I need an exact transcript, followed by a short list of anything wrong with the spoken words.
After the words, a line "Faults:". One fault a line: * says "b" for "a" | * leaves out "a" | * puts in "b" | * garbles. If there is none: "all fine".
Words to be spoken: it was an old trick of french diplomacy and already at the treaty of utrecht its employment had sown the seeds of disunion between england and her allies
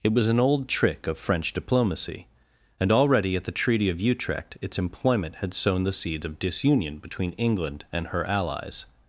it was an old trick of french diplomacy and already at the treaty of utrecht its employment had sown the seeds of disunion between england and her allies
Faults:
all fine